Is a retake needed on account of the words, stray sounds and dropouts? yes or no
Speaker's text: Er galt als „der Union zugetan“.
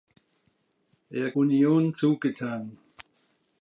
yes